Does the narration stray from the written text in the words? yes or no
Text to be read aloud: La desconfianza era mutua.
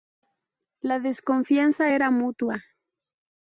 no